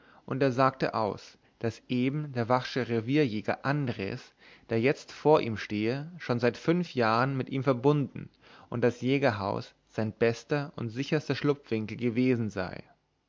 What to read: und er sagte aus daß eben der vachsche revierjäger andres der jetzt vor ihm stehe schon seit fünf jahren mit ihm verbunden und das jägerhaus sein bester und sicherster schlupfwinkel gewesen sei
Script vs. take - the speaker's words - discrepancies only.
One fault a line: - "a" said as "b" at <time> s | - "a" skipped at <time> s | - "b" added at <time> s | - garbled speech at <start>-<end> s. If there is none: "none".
none